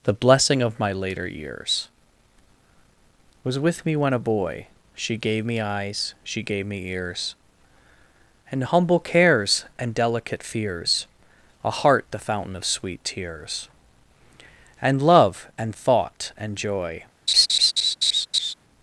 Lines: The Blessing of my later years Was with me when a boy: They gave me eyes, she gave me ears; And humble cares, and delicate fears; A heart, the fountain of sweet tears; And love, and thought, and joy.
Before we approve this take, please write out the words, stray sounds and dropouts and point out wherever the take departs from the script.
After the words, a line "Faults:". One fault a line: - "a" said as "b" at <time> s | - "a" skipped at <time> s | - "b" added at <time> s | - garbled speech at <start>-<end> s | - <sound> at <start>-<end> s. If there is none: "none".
The Blessing of my later years Was with me when a boy: She gave me eyes, she gave me ears; And humble cares, and delicate fears; A heart, the fountain of sweet tears; And love, and thought, and joy.
Faults:
- "They" said as "She" at 5.0 s
- laugh at 17.3-18.5 s